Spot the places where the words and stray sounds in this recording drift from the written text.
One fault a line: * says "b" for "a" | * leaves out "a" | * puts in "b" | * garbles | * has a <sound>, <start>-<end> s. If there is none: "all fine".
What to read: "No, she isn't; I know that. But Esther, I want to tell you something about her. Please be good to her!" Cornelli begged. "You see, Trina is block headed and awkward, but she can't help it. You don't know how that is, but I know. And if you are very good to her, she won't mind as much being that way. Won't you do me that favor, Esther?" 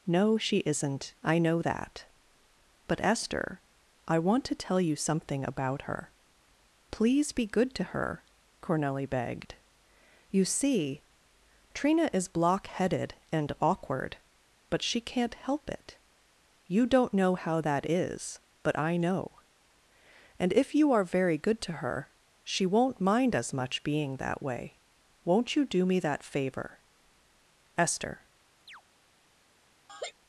* has a chirp, 28.7-28.8 s
* has a laugh, 29.9-30.1 s